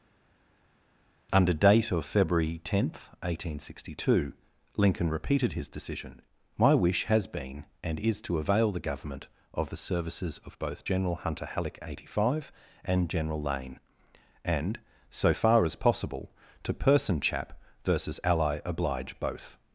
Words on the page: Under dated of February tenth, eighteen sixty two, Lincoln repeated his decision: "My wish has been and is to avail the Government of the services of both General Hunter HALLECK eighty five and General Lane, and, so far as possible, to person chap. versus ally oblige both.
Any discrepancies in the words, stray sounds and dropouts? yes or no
yes